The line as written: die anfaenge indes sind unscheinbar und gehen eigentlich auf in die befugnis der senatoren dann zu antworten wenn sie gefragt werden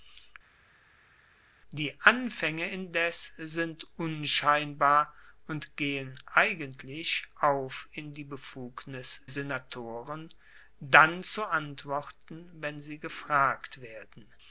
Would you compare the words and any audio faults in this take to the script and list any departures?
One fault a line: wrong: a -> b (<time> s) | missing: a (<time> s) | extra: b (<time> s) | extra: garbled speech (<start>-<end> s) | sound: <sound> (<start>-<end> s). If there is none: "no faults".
missing: der (9.2 s)